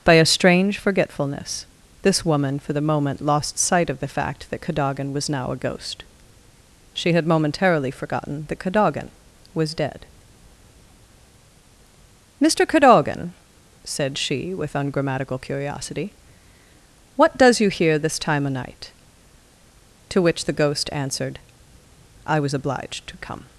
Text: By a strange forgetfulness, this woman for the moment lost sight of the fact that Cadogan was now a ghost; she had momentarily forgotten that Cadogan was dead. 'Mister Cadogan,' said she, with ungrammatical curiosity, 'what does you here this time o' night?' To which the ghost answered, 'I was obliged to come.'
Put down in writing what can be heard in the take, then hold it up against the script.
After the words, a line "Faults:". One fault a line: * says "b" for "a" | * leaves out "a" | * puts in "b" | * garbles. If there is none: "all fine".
By a strange forgetfulness, this woman for the moment lost sight of the fact that Cadogan was now a ghost; she had momentarily forgotten that Cadogan was dead. 'Mister Cadogan,' said she, with ungrammatical curiosity, 'what does you here this time o' night?' To which the ghost answered, 'I was obliged to come.'
Faults:
all fine